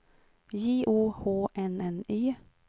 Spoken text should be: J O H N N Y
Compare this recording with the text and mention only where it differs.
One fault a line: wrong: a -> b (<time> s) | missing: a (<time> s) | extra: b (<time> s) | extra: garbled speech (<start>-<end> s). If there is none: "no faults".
no faults